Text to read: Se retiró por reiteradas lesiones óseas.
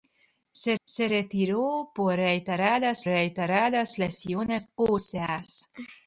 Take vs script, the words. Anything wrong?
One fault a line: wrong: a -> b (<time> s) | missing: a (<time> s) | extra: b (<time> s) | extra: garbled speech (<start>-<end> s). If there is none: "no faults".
extra: se (0.8 s)
extra: reiteradas (3.0 s)